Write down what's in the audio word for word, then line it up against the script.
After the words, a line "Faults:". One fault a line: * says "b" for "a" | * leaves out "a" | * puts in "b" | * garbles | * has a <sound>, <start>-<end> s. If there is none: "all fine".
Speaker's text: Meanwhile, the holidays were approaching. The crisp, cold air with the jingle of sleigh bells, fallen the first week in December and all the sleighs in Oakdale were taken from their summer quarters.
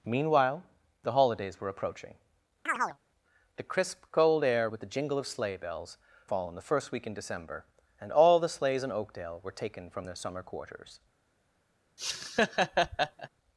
Meanwhile, the holidays were approaching. The crisp, cold air with the jingle of sleigh bells, fallen the first week in December and all the sleighs in Oakdale were taken from their summer quarters.
Faults:
* has a chirp, 2.7-3.0 s
* has a laugh, 12.0-13.3 s